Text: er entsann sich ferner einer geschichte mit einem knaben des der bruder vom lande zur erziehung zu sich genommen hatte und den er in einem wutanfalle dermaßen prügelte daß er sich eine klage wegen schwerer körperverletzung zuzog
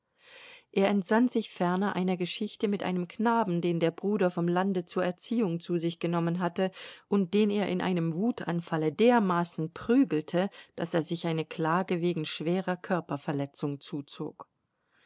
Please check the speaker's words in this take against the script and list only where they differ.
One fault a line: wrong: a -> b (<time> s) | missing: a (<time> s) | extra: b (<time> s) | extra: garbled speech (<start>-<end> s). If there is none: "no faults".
wrong: des -> den (3.6 s)